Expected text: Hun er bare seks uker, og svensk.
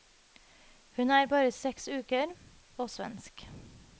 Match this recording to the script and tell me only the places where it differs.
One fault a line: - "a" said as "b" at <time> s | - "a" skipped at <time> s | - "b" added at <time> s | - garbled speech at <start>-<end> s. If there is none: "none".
none